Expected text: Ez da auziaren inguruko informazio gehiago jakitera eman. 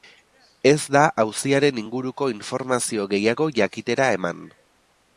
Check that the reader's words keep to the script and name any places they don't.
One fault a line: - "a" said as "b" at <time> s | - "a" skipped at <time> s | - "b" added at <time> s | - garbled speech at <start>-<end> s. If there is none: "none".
none